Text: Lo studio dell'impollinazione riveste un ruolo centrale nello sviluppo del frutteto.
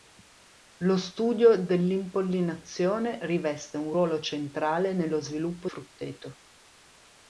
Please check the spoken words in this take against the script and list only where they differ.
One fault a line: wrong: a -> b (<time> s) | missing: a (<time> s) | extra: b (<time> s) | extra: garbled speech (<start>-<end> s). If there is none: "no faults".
missing: del (5.7 s)